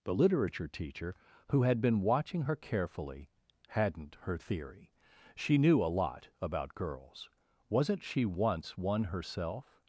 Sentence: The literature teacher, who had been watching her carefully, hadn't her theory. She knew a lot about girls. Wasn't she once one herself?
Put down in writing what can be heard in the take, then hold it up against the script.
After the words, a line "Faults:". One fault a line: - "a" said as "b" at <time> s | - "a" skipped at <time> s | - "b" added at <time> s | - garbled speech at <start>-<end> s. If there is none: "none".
The literature teacher, who had been watching her carefully, hadn't her theory. She knew a lot about girls. Wasn't she once one herself?
Faults:
none